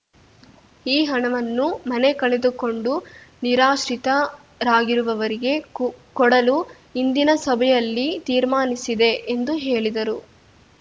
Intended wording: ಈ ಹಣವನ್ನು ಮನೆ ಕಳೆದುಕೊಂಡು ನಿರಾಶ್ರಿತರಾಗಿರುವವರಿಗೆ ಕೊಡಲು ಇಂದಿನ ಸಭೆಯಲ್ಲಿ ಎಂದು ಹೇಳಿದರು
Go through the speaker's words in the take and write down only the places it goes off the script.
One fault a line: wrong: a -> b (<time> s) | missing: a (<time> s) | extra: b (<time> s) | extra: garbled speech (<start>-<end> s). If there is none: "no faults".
extra: ತೀರ್ಮಾನಿಸಿದೆ (8.3 s)